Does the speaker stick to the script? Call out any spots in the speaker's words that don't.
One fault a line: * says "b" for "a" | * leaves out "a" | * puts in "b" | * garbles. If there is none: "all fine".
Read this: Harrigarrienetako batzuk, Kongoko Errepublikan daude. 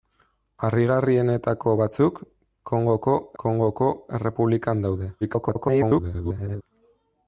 * puts in "Kongoko"
* garbles